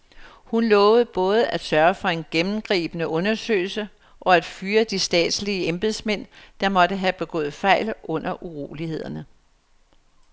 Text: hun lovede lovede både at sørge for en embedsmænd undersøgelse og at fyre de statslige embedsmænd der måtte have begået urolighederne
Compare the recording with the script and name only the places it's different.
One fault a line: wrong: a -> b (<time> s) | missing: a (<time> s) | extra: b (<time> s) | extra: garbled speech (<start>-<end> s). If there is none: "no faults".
missing: lovede (1.1 s)
wrong: embedsmænd -> gennemgribende (2.3 s)
extra: fejl under (7.5 s)